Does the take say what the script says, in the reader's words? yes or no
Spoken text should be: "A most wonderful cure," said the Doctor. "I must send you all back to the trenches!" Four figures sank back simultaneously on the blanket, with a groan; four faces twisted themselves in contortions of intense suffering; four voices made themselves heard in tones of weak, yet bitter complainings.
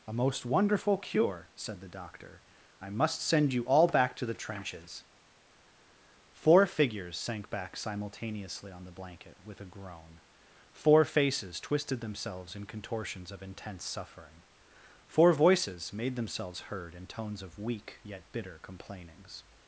yes